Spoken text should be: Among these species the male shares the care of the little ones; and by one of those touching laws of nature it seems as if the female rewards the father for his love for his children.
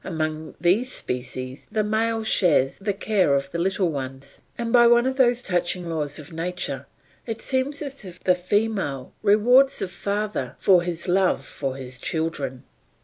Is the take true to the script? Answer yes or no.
yes